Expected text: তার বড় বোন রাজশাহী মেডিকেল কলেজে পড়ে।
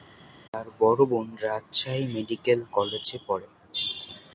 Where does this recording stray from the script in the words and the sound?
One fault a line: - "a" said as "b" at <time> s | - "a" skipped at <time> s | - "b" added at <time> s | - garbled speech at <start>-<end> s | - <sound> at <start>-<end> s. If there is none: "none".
none